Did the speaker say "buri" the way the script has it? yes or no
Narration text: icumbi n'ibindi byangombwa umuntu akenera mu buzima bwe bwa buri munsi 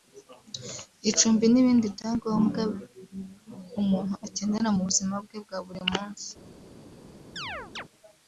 yes